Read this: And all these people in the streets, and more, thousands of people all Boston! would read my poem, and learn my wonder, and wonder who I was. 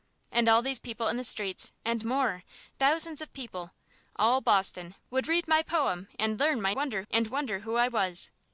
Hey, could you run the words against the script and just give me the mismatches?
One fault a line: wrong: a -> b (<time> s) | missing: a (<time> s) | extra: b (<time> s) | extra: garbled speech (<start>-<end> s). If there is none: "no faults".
no faults